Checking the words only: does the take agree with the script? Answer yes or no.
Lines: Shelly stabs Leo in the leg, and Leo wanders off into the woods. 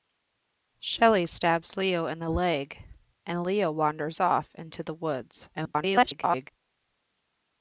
no